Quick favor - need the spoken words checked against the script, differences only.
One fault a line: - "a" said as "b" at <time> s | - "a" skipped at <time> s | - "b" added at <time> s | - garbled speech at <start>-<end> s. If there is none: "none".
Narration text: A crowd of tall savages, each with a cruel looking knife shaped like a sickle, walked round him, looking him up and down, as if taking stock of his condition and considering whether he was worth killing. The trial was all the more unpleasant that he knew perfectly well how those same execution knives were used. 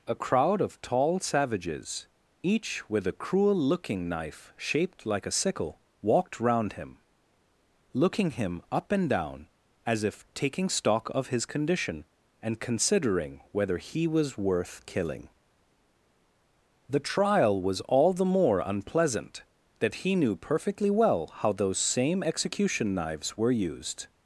none